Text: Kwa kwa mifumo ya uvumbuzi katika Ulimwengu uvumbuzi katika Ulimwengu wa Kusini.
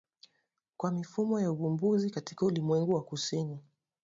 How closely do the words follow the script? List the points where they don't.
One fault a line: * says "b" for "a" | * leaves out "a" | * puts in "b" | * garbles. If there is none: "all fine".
* leaves out "kwa"
* leaves out "uvumbuzi katika Ulimwengu"